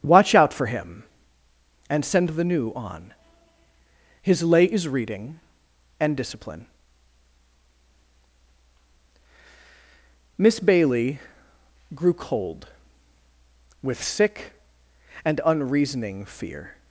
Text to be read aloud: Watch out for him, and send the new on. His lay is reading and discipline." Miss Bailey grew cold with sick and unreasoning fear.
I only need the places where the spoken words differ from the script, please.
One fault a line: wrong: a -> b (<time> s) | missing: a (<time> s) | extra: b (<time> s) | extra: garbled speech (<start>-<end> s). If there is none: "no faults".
no faults